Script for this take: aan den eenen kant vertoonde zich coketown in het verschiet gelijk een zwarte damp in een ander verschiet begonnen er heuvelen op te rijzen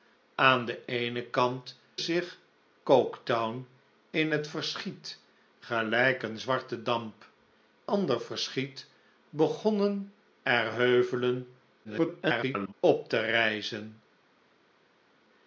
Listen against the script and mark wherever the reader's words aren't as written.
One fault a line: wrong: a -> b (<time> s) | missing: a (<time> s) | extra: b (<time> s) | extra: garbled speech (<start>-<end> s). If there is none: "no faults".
missing: vertoonde (1.8 s)
missing: in een (7.3 s)
extra: garbled speech (11.8-12.7 s)